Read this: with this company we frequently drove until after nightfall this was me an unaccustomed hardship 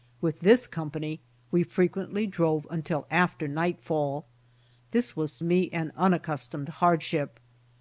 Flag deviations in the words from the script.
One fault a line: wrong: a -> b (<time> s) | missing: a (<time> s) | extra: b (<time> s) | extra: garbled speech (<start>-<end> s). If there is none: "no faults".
no faults